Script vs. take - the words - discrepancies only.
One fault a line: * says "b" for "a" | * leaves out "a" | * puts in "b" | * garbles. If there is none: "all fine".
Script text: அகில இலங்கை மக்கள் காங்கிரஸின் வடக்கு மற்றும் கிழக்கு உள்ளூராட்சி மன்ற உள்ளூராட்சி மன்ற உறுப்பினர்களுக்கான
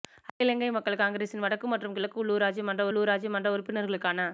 all fine